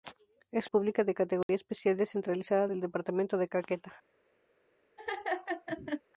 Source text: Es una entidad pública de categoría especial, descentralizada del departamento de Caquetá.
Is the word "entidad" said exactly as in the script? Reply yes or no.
no